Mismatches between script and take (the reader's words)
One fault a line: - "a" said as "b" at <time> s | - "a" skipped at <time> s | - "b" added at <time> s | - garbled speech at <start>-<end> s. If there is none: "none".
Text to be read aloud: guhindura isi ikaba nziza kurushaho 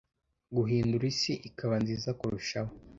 none